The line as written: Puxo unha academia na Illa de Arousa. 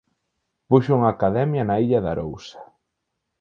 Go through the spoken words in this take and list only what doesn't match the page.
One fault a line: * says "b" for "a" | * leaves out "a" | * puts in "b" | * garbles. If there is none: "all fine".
all fine